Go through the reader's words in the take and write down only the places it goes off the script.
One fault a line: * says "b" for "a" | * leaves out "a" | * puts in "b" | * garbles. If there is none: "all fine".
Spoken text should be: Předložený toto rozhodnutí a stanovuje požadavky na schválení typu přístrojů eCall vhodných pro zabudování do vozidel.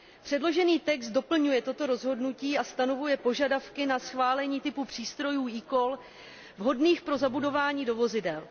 * puts in "text doplňuje"